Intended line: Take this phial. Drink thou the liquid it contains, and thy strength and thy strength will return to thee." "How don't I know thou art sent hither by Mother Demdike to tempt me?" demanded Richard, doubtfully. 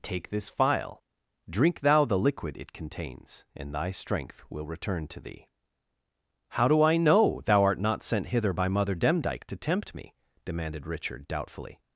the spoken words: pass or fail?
fail